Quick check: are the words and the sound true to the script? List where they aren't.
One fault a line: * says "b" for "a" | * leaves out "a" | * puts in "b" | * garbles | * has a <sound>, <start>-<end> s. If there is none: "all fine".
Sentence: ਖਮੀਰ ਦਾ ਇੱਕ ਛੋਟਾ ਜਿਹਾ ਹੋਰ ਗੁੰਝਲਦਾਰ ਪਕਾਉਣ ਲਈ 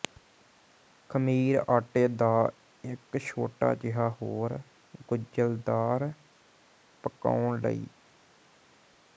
* puts in "ਆਟੇ"